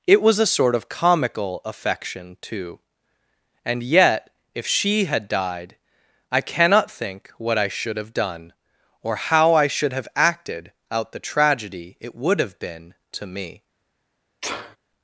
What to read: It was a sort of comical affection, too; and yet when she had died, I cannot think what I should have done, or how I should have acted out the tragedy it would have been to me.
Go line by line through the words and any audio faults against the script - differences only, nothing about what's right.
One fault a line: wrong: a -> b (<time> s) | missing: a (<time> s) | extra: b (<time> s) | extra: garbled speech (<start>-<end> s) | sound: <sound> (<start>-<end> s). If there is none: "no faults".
wrong: when -> if (4.5 s)
sound: sneeze (14.4-14.8 s)